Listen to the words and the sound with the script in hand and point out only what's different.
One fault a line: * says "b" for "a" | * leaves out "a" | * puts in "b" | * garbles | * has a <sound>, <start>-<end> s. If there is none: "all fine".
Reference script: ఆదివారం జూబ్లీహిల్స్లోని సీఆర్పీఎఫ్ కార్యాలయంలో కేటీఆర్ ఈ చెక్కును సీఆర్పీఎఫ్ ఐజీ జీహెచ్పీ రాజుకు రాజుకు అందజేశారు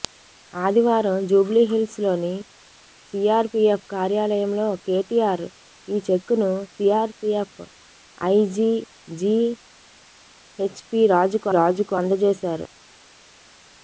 all fine